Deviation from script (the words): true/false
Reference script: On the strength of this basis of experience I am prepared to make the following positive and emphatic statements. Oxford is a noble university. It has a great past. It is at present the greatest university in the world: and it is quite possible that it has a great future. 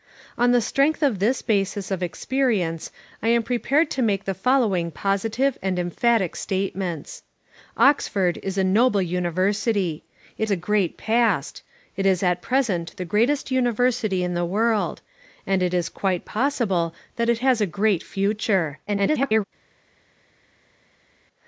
true